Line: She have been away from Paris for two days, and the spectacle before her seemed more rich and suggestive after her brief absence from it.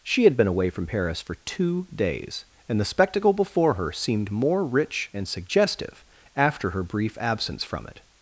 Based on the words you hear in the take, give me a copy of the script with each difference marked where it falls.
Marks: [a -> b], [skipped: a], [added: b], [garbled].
She [have -> had] been away from Paris for two days, and the spectacle before her seemed more rich and suggestive after her brief absence from it.